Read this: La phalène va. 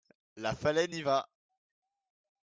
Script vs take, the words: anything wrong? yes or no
yes